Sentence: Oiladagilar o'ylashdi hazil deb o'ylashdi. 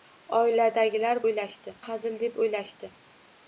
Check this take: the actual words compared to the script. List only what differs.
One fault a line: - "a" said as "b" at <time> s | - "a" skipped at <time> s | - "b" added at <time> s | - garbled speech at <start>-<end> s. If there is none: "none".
none